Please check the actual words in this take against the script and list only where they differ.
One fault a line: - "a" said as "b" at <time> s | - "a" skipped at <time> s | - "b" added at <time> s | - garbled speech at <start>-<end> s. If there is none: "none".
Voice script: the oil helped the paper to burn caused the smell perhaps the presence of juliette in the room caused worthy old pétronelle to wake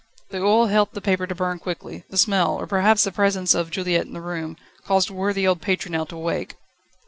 - "caused" said as "quickly" at 1.6 s
- "or" added at 2.5 s